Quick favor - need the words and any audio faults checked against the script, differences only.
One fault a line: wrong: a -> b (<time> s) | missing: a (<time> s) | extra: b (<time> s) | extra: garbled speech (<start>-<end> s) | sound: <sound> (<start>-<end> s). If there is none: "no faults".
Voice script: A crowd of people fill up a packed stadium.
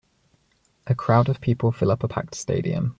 no faults